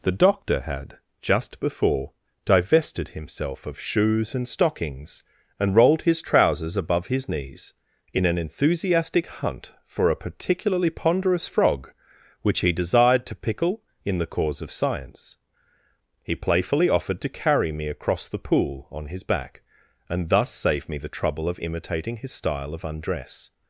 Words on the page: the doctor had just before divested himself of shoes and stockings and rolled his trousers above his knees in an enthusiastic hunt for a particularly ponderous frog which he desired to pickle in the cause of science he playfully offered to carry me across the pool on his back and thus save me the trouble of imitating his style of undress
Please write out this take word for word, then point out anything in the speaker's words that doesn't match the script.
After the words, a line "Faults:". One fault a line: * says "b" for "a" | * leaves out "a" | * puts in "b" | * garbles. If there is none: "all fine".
the doctor had just before divested himself of shoes and stockings and rolled his trousers above his knees in an enthusiastic hunt for a particularly ponderous frog which he desired to pickle in the cause of science he playfully offered to carry me across the pool on his back and thus save me the trouble of imitating his style of undress
Faults:
all fine